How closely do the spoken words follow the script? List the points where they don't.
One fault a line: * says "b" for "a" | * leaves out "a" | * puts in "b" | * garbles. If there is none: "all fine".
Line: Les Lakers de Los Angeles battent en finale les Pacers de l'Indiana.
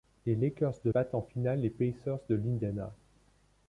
* leaves out "Los Angeles"